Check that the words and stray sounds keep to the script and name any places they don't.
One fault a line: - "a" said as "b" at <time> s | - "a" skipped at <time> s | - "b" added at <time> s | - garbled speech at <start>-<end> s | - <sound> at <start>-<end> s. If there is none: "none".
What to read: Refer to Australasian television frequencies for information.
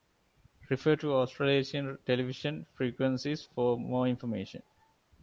- "more" added at 3.8 s